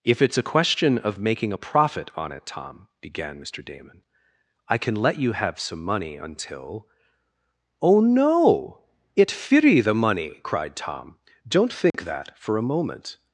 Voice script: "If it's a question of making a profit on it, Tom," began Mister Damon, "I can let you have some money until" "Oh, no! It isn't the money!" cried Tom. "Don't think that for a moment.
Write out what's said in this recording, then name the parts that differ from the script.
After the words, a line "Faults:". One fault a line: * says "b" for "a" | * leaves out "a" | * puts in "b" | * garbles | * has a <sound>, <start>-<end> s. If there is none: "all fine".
"If it's a question of making a profit on it, Tom," began Mister Damon, "I can let you have some money until" "Oh, no! It firi the money!" cried Tom. "Don't think that for a moment.
Faults:
* says "firi" for "isn't"
* has a dropout, 11.9-11.9 s